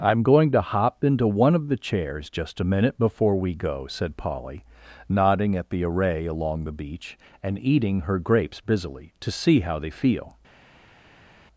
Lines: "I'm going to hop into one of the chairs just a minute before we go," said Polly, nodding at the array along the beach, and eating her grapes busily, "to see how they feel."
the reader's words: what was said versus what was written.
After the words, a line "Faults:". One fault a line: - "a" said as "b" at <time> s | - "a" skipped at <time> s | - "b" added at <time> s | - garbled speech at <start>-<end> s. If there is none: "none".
"I'm going to hop into one of the chairs just a minute before we go," said Polly, nodding at the array along the beach, and eating her grapes busily, "to see how they feel."
Faults:
none